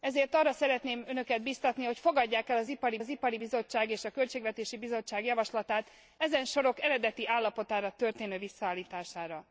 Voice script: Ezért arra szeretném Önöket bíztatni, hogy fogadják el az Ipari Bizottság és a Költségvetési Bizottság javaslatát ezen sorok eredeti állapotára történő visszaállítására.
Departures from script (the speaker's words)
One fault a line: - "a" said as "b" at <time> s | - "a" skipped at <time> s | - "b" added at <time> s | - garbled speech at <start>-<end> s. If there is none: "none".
- "az Ipari" added at 3.0 s